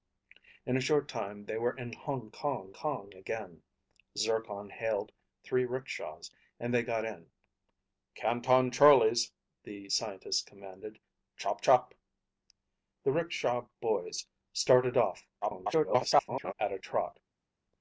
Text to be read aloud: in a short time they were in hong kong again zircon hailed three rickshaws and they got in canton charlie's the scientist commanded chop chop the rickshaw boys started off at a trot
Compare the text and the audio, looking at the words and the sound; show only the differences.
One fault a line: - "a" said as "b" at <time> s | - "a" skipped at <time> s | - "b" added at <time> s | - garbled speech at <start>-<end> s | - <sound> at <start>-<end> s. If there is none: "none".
- "kong" added at 2.7 s
- garbled speech at 15.4-16.5 s